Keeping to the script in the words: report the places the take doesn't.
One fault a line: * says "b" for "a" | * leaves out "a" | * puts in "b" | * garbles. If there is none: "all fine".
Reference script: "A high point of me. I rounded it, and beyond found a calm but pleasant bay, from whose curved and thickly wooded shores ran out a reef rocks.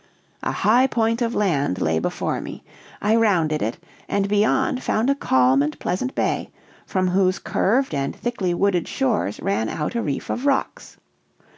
* puts in "land lay before"
* says "and" for "but"
* puts in "of"